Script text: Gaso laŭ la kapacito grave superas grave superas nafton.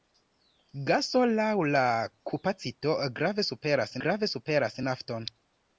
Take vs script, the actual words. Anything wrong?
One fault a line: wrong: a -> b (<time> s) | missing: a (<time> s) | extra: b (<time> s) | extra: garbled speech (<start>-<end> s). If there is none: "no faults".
no faults